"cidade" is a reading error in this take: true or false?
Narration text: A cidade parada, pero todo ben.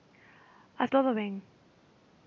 true